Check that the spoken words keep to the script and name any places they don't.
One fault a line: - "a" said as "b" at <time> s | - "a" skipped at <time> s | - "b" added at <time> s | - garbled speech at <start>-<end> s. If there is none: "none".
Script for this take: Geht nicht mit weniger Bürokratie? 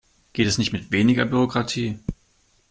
- "es" added at 0.5 s